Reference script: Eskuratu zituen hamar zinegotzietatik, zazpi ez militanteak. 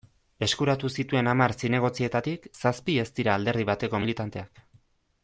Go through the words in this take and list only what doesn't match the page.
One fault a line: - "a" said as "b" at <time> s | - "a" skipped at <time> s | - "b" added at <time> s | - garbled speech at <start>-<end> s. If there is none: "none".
- "dira alderdi bateko" added at 3.2 s